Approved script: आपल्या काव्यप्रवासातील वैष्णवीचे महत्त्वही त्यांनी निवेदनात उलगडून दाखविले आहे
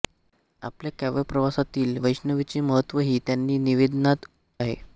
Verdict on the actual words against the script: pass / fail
fail